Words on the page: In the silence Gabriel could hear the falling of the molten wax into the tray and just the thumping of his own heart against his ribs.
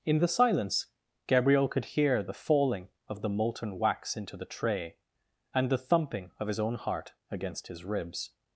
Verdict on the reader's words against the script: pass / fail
fail